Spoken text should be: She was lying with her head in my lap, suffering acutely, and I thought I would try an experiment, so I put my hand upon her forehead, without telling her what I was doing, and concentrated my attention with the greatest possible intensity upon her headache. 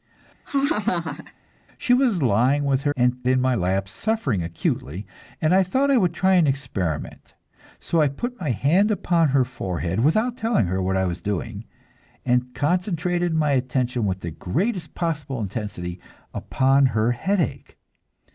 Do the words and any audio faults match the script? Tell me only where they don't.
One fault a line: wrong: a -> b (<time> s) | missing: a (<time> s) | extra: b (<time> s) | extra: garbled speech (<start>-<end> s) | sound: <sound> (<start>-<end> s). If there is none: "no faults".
sound: laugh (0.4-1.3 s)
wrong: head -> and (3.0 s)